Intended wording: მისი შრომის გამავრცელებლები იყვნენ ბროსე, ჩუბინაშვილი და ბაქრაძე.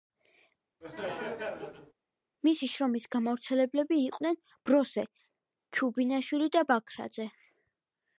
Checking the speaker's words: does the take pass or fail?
pass